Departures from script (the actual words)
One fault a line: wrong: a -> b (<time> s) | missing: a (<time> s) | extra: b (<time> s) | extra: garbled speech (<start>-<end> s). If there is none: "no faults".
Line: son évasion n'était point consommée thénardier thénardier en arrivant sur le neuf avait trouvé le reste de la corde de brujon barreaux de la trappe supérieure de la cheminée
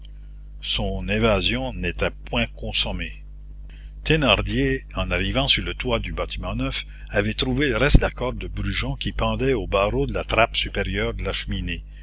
missing: thénardier (4.8 s)
extra: toit du bâtiment (5.8 s)
extra: qui pendait aux (8.9 s)